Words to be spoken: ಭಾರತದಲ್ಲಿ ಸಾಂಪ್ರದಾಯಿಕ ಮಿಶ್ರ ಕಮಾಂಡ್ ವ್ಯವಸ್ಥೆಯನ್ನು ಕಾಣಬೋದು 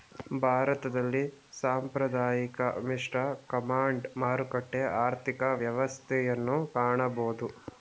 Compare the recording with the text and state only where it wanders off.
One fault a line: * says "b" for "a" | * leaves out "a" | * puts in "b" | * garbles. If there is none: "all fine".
* puts in "ಮಾರುಕಟ್ಟೆ ಆರ್ಥಿಕ"